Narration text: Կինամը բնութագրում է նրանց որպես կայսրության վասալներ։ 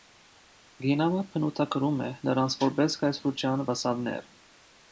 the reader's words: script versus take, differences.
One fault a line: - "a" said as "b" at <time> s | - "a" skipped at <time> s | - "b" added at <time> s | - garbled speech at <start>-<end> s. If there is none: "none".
none